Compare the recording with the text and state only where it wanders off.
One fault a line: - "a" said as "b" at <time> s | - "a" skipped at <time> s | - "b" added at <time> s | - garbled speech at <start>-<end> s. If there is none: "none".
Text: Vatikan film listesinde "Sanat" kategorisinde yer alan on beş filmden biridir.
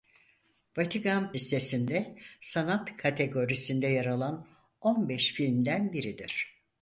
- "film" skipped at 1.4 s